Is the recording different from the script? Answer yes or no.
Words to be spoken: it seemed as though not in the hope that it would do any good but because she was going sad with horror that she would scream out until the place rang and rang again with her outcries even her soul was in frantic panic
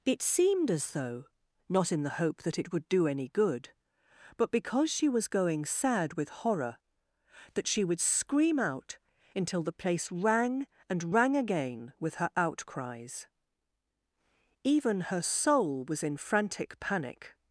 no